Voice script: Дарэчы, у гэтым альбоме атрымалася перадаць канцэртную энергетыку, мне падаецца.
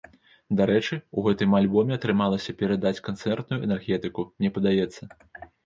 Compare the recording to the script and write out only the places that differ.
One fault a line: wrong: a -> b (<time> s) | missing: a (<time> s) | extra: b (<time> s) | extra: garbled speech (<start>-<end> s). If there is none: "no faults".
no faults